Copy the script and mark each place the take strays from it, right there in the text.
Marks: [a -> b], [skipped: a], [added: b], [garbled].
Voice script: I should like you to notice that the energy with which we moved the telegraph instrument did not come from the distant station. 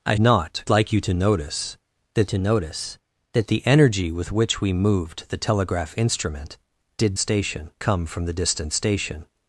I [should -> not] like you to notice that [added: to notice that] the energy with which we moved the telegraph instrument did [not -> station] come from the distant station.